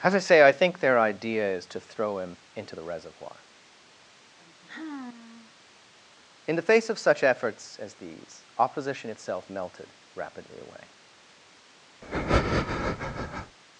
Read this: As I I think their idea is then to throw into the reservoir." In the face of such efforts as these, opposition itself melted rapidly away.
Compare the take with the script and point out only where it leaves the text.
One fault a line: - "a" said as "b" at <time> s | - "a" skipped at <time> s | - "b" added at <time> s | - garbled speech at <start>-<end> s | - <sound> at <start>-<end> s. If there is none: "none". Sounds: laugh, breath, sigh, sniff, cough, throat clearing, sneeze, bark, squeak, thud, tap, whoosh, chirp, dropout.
- "say" added at 0.2 s
- "then" skipped at 1.6 s
- "him" added at 2.2 s
- sigh at 4.4-5.5 s
- breath at 12.0-13.6 s